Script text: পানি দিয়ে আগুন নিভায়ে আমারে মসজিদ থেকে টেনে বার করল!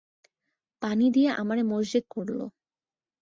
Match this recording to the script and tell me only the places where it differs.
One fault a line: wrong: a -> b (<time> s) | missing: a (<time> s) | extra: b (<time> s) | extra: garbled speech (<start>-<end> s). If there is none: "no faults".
missing: আগুন নিভায়ে (1.3 s)
missing: থেকে টেনে বার (2.0 s)